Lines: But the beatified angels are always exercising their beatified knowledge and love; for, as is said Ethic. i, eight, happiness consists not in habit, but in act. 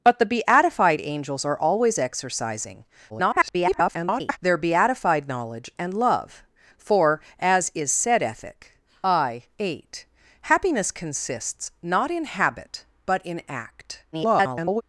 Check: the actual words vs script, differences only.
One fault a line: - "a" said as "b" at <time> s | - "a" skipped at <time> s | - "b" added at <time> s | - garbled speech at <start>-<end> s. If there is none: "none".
- garbled speech at 3.1-4.4 s
- garbled speech at 14.1-14.8 s